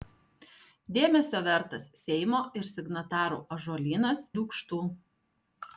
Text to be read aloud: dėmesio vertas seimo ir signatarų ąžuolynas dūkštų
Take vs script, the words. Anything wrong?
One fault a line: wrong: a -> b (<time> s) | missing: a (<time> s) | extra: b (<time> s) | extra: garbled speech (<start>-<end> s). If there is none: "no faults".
no faults